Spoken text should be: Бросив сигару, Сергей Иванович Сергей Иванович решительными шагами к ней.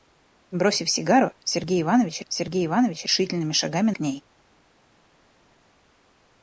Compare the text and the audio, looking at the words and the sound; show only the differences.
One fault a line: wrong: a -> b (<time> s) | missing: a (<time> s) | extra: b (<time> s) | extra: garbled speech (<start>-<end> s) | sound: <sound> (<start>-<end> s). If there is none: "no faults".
no faults